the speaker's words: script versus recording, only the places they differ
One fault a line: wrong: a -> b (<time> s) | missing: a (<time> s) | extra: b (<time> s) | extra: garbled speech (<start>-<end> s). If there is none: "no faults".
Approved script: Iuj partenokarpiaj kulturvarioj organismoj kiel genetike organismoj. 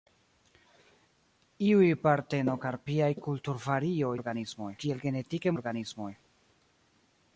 no faults